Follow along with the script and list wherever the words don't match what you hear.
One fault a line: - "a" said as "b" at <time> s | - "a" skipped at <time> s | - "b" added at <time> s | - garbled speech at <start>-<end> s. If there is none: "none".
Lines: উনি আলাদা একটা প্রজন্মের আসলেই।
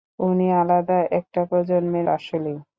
none